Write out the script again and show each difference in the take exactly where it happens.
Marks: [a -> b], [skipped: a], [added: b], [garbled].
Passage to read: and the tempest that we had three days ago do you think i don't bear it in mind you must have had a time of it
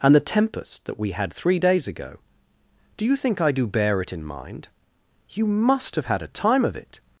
and the tempest that we had three days ago do you think i [don't -> do] bear it in mind you must have had a time of it